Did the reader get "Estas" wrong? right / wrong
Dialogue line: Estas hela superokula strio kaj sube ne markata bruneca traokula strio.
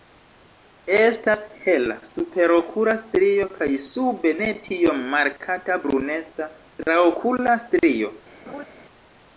right